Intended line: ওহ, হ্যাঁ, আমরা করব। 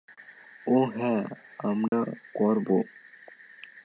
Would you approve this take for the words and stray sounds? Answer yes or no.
no